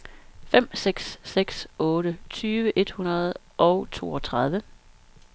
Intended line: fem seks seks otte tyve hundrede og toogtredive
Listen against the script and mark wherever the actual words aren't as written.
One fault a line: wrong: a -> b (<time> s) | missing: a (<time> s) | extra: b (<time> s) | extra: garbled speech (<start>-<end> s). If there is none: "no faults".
extra: et (2.7 s)